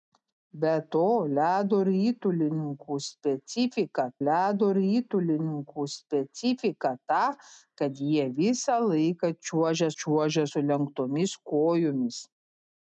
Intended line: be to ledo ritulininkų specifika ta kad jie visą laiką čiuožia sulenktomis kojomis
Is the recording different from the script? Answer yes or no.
yes